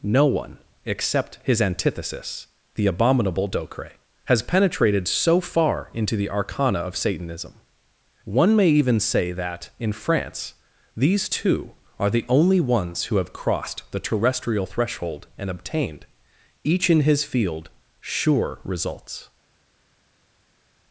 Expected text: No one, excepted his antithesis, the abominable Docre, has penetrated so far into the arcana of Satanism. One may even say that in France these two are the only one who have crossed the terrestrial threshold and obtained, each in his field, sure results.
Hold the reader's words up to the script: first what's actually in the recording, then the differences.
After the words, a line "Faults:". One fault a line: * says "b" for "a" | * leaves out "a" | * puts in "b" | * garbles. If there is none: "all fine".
No one, except his antithesis, the abominable Docre, has penetrated so far into the arcana of Satanism. One may even say that in France these two are the only ones who have crossed the terrestrial threshold and obtained, each in his field, sure results.
Faults:
* says "except" for "excepted"
* says "ones" for "one"